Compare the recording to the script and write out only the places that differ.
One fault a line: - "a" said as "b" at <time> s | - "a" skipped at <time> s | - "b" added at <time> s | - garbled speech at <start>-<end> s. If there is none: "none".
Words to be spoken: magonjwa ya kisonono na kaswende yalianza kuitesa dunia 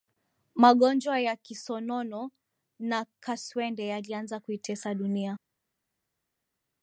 none